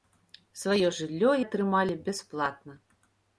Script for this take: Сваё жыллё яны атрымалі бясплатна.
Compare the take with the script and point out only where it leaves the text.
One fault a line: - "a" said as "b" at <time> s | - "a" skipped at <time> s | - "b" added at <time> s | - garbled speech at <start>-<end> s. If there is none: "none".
- "яны" skipped at 1.3 s